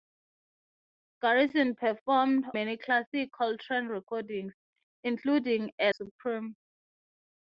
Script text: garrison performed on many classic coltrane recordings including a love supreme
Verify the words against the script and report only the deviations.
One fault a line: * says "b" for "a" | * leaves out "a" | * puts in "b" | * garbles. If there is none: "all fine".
* leaves out "on"
* leaves out "love"